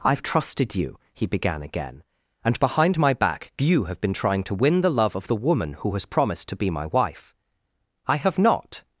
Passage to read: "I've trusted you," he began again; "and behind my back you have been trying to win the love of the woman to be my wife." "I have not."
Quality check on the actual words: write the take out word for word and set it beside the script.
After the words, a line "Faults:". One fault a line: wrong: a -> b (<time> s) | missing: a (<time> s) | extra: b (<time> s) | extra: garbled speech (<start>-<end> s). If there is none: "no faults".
"I've trusted you," he began again; "and behind my back you have been trying to win the love of the woman who has promised to be my wife." "I have not."
Faults:
extra: who has promised (5.8 s)